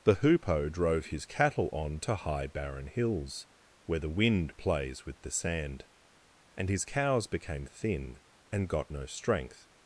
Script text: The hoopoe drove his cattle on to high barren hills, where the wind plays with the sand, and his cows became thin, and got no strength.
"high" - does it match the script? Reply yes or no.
yes